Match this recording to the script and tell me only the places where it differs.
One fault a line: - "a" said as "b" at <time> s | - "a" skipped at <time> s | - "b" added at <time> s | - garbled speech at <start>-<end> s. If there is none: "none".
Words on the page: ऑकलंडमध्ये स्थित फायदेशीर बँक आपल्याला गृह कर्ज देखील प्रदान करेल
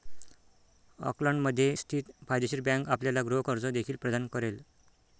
none